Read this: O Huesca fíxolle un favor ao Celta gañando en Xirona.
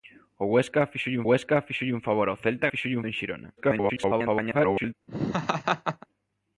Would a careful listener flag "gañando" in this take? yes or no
yes